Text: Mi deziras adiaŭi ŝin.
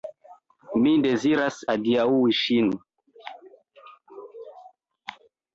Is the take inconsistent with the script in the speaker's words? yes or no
no